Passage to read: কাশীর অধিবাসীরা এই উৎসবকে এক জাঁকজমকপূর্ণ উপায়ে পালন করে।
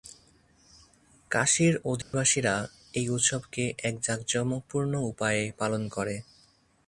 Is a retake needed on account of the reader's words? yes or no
no